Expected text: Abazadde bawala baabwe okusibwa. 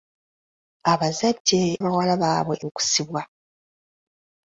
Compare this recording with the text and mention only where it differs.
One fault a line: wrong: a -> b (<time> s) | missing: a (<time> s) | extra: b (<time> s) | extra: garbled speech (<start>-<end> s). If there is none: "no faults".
no faults